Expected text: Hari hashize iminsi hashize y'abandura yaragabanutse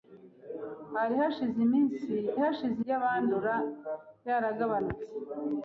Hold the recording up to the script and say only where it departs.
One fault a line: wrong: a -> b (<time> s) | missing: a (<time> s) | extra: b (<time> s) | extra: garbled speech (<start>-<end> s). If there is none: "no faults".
no faults